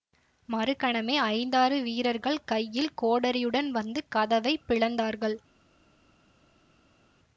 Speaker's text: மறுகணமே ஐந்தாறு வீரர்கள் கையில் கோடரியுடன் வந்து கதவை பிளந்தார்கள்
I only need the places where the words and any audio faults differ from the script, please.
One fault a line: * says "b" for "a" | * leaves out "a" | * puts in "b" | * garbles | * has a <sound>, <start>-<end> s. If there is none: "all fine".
all fine